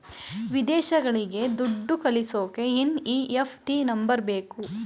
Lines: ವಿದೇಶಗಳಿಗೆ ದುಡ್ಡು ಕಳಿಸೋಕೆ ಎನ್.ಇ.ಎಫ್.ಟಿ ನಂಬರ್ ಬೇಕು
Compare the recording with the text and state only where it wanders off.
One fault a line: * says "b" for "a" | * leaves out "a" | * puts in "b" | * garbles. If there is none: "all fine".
all fine